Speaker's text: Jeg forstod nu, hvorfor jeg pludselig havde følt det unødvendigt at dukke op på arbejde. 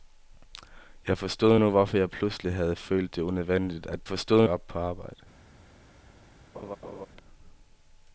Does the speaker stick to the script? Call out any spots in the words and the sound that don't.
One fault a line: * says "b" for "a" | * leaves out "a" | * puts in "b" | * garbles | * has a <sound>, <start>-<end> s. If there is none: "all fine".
* says "forstod" for "dukke"
* has a laugh, 6.5-7.1 s